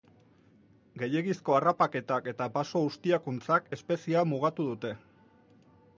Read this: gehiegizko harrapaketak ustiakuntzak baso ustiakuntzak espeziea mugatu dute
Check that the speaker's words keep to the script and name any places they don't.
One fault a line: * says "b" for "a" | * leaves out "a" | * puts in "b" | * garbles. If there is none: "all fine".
* says "eta" for "ustiakuntzak"